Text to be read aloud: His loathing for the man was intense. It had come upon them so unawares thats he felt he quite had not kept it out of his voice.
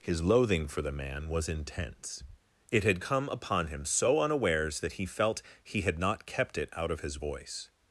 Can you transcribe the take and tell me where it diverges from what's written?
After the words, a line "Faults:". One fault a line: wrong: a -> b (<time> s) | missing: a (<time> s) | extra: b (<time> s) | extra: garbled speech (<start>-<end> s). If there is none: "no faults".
His loathing for the man was intense. It had come upon him so unawares that he felt he had not kept it out of his voice.
Faults:
wrong: them -> him (3.7 s)
wrong: thats -> that (4.8 s)
missing: quite (5.8 s)